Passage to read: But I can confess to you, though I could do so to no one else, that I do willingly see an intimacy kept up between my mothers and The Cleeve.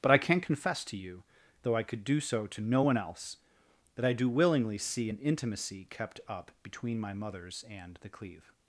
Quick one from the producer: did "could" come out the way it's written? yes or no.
yes